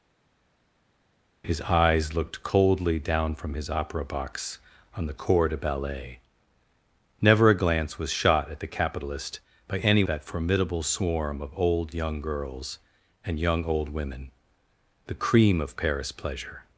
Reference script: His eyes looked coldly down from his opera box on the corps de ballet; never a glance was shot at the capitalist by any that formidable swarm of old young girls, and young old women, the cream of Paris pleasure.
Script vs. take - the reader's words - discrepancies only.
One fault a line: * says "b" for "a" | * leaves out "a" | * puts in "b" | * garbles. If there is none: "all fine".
all fine